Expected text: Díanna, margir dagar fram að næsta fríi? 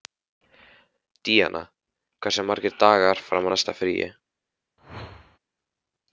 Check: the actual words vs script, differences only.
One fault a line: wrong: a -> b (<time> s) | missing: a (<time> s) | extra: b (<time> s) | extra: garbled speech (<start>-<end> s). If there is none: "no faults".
extra: hversu (2.2 s)